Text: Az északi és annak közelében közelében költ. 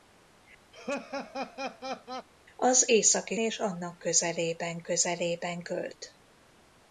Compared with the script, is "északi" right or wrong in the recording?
right